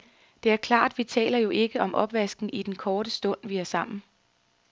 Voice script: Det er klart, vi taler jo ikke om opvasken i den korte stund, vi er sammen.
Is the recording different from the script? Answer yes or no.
no